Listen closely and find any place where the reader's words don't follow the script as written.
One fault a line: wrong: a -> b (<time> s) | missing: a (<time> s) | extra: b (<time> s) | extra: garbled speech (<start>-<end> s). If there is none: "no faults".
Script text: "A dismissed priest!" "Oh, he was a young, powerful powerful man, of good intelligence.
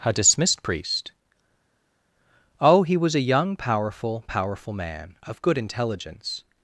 no faults